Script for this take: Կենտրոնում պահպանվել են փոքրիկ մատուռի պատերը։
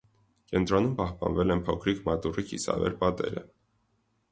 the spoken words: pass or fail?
fail